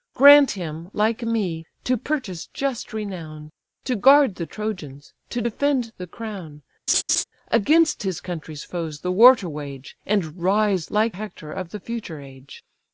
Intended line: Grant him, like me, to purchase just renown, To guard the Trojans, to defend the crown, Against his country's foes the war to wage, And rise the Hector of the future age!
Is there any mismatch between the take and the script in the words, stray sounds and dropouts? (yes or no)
yes